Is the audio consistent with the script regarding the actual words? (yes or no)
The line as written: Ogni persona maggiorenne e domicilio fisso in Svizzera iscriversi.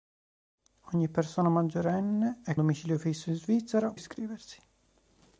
yes